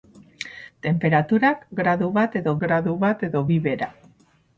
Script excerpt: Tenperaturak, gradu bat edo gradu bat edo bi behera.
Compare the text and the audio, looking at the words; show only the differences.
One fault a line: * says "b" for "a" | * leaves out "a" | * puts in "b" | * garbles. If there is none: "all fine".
all fine